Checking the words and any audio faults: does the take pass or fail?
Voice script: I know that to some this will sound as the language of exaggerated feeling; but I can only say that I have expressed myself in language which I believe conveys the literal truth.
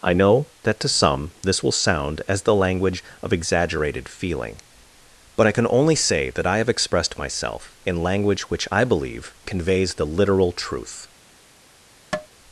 fail